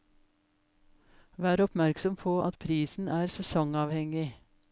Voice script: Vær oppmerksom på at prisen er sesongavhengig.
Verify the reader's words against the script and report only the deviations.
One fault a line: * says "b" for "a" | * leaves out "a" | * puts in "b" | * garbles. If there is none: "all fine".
all fine